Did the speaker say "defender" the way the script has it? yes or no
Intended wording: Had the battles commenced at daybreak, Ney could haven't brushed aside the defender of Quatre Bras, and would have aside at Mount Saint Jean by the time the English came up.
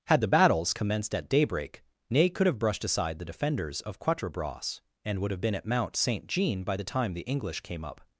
no